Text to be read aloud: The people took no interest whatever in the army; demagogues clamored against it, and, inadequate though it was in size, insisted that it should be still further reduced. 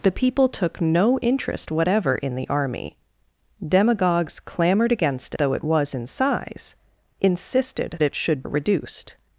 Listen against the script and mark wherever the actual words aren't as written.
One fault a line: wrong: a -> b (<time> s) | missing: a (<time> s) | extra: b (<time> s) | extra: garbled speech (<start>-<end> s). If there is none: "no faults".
missing: it and inadequate (5.3 s)
missing: that (8.0 s)
missing: be still further (8.4 s)